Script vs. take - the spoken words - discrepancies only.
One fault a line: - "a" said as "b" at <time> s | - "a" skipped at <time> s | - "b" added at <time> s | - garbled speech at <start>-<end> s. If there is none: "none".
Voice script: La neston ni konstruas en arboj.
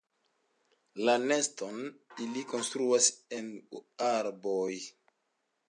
- "ni" said as "ili" at 2.3 s